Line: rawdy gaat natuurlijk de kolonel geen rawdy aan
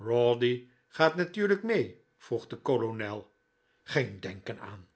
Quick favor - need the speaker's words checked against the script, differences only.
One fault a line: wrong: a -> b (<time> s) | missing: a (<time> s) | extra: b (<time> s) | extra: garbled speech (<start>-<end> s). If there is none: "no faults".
extra: mee vroeg (1.6 s)
wrong: rawdy -> denken (4.2 s)